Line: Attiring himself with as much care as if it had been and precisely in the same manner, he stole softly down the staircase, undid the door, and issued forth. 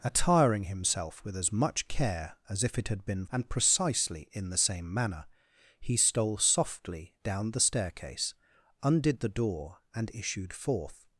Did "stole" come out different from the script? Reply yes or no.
no